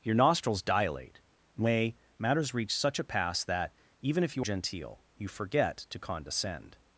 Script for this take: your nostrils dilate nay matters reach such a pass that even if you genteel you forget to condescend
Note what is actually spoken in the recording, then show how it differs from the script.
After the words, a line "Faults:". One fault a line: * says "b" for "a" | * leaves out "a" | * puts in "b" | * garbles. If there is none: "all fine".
your nostrils dilate nay matters reach such a pass that even if you genteel you forget to condescend
Faults:
all fine